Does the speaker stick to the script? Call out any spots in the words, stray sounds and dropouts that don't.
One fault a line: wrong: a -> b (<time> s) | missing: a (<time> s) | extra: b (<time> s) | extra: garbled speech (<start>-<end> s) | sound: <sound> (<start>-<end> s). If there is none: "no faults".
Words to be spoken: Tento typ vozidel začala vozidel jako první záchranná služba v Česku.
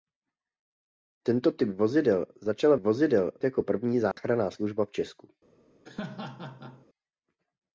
sound: dropout (4.1-4.2 s)
sound: laugh (5.8-6.9 s)